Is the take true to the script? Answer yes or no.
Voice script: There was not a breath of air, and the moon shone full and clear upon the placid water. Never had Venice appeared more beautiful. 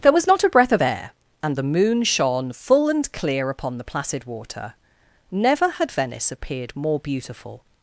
yes